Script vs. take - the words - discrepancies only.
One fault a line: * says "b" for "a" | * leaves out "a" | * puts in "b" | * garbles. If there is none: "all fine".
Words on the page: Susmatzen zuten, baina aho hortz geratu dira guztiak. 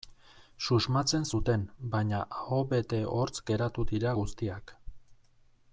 * puts in "bete"